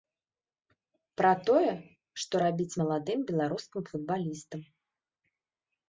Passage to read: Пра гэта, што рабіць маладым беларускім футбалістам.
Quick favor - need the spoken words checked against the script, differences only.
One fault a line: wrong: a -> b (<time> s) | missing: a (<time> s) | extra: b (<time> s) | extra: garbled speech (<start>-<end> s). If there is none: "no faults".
wrong: гэта -> тое (1.5 s)